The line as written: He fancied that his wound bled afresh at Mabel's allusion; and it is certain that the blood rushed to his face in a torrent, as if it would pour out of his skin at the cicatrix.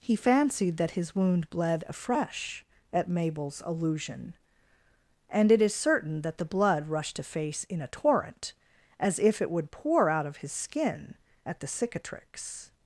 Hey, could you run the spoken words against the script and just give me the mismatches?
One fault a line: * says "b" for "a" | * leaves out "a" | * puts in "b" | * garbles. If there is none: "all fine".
* leaves out "his"